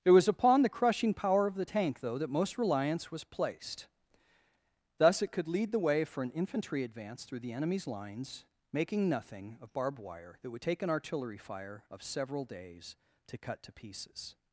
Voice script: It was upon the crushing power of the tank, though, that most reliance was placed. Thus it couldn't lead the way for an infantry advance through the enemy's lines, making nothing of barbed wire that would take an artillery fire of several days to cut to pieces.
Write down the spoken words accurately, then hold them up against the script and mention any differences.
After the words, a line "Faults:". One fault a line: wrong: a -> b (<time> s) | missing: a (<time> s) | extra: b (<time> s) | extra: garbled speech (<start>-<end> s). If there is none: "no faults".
It was upon the crushing power of the tank, though, that most reliance was placed. Thus it could lead the way for an infantry advance through the enemy's lines, making nothing of barbed wire that would take an artillery fire of several days to cut to pieces.
Faults:
wrong: couldn't -> could (5.3 s)